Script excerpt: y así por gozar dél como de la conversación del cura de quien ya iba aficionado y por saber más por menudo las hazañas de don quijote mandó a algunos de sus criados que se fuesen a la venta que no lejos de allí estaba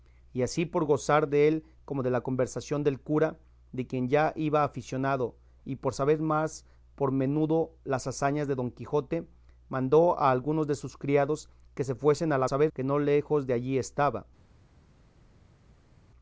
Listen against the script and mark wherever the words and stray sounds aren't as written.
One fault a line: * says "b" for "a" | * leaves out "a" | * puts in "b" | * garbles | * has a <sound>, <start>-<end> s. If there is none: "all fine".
* says "saber" for "venta"